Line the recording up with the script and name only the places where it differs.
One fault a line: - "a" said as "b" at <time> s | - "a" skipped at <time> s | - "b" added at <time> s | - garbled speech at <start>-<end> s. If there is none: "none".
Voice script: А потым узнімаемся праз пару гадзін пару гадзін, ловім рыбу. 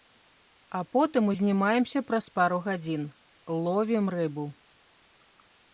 - "пару гадзін" skipped at 3.0 s